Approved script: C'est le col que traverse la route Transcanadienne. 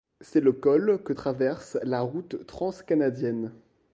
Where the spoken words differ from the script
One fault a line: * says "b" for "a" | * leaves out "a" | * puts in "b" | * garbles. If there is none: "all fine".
all fine